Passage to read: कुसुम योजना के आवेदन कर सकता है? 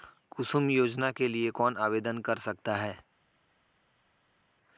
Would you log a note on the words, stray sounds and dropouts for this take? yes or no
yes